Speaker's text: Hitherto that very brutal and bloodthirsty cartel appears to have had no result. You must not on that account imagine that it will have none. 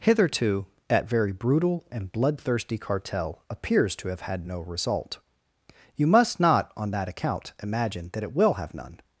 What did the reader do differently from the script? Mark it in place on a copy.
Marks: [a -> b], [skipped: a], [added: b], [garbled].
Hitherto that very brutal and bloodthirsty cartel appears to have had no result. You must not on that account imagine that it will have none.